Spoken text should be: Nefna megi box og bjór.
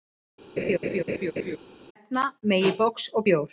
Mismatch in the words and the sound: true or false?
true